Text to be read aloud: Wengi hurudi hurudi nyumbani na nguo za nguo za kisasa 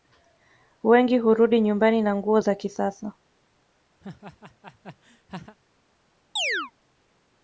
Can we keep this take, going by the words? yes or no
no